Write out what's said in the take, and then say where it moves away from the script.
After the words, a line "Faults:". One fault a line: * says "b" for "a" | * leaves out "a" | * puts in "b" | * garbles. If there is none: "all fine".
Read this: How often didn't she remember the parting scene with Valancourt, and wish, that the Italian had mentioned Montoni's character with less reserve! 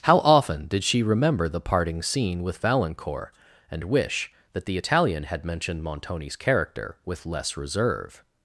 How often did she remember the parting scene with Valancourt, and wish, that the Italian had mentioned Montoni's character with less reserve!
Faults:
* says "did" for "didn't"